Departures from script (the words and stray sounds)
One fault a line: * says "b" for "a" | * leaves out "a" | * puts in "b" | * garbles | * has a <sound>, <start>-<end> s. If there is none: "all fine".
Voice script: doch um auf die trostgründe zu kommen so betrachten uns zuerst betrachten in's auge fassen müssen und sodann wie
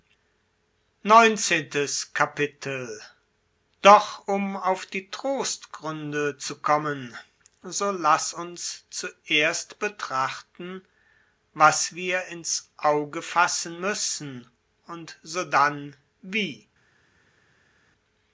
* says "laß" for "betrachten"
* puts in "was wir"